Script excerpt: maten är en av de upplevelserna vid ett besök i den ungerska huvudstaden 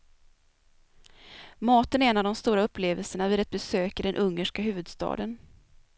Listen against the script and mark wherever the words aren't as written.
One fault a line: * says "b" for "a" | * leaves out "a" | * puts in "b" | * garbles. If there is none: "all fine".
* puts in "stora"